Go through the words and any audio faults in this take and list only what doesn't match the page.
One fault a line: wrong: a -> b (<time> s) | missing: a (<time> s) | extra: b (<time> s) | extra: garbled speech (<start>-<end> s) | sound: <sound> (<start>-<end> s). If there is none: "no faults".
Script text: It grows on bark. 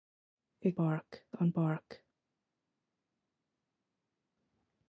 wrong: grows -> bark (0.7 s)